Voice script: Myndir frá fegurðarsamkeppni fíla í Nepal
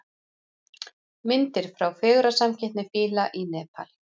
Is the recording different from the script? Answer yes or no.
no